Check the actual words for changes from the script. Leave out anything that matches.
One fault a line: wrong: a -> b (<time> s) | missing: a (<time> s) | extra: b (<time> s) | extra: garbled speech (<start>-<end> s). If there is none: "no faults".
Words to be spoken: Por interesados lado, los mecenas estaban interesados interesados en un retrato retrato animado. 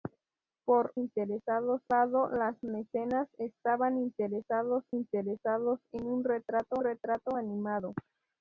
no faults